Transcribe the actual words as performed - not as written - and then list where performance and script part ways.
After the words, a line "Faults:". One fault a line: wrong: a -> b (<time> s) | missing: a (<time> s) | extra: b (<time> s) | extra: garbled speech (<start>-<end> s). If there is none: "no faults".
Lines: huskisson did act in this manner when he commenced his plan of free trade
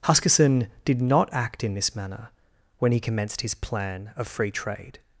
huskisson did not act in this manner when he commenced his plan of free trade
Faults:
extra: not (1.0 s)